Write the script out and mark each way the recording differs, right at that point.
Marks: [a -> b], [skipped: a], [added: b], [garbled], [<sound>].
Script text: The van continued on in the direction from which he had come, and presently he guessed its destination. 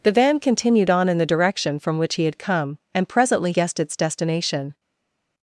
The van continued on in the direction from which he had come, and presently [skipped: he] guessed its destination.